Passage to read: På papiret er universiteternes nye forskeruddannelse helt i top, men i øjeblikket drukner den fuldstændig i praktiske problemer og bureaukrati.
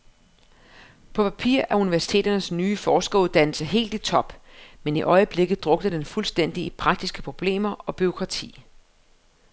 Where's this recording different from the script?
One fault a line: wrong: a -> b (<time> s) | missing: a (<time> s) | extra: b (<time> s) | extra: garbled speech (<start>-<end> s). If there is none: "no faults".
no faults